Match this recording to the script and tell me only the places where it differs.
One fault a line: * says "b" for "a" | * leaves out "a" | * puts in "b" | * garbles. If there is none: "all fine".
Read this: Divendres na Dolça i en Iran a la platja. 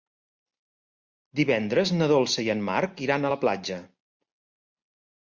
* puts in "Marc"